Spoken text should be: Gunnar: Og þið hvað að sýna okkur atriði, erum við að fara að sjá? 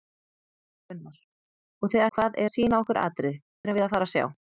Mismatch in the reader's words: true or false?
false